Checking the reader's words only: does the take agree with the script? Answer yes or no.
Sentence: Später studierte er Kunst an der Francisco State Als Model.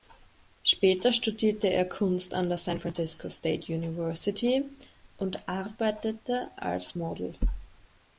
no